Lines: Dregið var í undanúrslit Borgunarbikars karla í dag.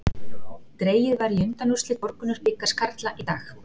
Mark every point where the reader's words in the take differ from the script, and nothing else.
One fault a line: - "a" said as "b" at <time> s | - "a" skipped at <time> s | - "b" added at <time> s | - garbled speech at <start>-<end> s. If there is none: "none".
none